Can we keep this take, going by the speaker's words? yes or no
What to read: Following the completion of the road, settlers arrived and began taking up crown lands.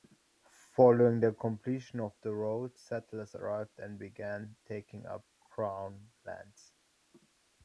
yes